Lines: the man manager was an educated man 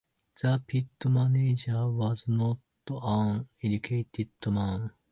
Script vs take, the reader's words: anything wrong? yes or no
yes